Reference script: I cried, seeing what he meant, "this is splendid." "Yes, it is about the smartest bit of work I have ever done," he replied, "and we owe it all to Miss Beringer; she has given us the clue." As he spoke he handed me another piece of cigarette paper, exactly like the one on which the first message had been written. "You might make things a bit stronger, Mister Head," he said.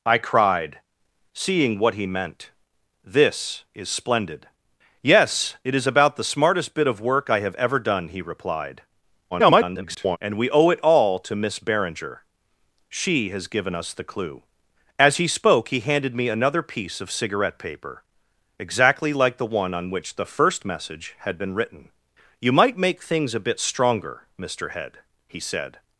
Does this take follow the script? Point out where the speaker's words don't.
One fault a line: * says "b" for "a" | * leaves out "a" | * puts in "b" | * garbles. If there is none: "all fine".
* garbles